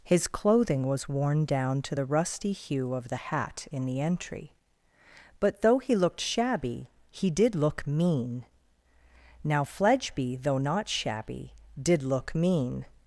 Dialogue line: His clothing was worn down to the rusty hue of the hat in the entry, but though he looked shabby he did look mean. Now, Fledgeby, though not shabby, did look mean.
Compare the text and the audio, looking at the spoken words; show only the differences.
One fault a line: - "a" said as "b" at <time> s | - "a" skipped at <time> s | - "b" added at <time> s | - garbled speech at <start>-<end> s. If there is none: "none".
none